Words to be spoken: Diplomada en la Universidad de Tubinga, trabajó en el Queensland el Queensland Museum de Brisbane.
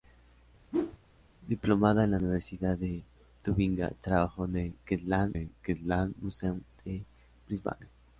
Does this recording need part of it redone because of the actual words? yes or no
no